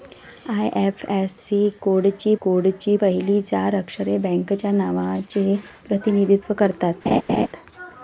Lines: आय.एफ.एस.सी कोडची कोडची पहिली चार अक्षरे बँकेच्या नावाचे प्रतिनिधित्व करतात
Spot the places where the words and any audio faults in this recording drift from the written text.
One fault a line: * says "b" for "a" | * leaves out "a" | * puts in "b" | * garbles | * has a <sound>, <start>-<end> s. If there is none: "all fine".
* has a laugh, 7.1-7.5 s